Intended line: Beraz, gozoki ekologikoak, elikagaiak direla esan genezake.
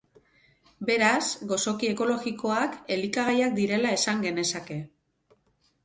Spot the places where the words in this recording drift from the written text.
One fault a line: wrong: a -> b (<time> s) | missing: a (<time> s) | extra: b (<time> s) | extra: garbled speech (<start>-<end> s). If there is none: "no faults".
no faults